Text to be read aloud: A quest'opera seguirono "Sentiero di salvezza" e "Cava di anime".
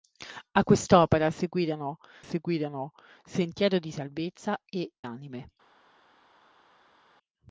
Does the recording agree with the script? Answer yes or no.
no